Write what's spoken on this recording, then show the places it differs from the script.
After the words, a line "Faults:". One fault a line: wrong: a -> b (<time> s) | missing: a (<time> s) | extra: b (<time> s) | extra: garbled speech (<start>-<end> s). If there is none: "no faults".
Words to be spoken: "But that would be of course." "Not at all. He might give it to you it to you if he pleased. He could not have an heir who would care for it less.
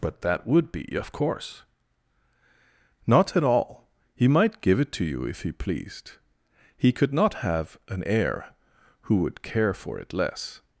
"But that would be of course." "Not at all. He might give it to you if he pleased. He could not have an heir who would care for it less.
Faults:
missing: it to you (5.2 s)